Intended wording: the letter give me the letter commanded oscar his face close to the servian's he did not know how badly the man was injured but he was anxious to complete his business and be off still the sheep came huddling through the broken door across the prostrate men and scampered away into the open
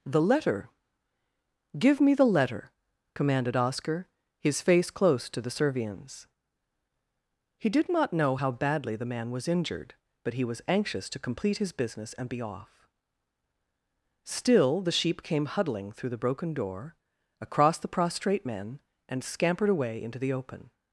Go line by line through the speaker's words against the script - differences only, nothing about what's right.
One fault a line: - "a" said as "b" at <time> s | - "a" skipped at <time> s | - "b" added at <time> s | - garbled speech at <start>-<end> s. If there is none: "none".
none